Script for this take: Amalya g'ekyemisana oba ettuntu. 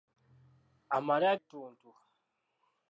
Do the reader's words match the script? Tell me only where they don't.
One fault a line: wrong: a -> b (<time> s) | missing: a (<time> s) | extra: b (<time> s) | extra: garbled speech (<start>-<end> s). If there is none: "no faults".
missing: g'ekyemisana oba (1.3 s)